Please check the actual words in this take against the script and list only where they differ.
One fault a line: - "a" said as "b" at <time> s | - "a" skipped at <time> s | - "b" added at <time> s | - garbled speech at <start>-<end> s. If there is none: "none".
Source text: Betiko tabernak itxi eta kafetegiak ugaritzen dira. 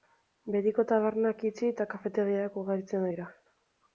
none